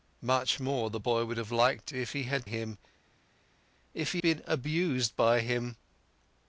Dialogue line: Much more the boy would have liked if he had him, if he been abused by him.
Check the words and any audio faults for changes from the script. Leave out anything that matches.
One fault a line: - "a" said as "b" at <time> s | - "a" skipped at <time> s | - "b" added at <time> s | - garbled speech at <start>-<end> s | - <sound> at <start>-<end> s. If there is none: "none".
none